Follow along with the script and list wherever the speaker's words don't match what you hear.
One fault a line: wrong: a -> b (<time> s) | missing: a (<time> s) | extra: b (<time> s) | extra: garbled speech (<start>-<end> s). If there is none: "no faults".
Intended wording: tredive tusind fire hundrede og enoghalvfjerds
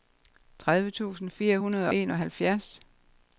missing: og (1.9 s)